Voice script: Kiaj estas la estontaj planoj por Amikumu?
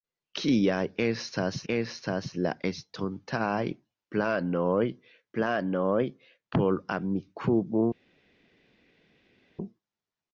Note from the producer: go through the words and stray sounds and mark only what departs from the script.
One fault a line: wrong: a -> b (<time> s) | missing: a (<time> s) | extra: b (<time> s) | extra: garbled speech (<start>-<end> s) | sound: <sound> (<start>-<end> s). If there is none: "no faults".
extra: estas (1.7 s)
extra: planoj (5.4 s)